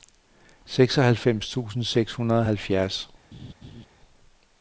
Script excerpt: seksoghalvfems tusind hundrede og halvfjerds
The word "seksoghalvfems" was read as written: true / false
true